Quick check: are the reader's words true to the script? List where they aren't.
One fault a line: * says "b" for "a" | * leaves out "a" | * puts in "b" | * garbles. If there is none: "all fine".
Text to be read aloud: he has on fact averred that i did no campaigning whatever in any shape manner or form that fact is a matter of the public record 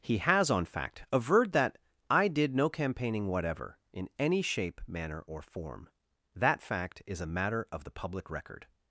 all fine